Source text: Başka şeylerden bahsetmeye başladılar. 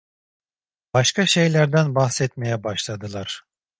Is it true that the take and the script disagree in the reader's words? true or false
false